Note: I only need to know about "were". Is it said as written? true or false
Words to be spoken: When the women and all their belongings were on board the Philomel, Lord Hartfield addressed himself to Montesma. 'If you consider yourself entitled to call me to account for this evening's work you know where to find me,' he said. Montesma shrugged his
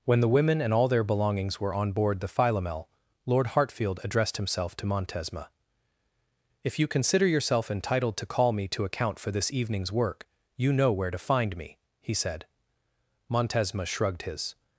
true